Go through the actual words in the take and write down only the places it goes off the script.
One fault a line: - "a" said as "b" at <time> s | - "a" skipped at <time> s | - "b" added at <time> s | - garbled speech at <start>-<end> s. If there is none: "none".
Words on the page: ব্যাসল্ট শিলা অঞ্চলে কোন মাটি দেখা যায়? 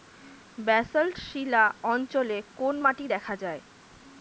none